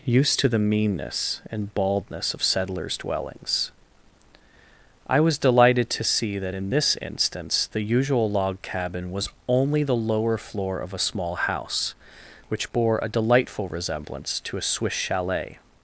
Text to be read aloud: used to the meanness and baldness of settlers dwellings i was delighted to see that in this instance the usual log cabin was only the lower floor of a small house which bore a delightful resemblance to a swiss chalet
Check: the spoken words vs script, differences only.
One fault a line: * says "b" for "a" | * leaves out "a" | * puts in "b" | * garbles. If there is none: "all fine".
all fine